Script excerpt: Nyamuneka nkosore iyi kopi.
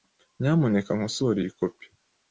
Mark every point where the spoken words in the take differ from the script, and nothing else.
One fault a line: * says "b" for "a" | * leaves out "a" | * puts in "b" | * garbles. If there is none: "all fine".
all fine